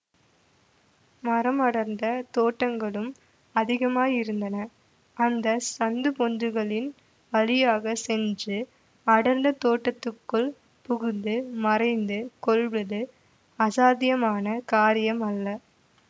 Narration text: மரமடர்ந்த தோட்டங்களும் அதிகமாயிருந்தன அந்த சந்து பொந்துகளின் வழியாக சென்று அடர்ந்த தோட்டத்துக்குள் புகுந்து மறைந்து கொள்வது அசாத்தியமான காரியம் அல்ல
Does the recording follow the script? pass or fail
pass